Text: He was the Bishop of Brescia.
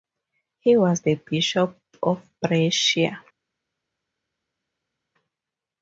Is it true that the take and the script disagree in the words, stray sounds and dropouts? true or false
false